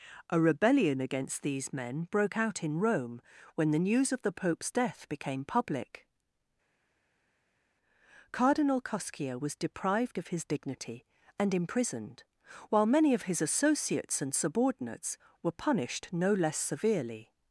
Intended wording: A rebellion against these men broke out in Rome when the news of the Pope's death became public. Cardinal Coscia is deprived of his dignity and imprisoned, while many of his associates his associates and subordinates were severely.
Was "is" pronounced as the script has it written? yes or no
no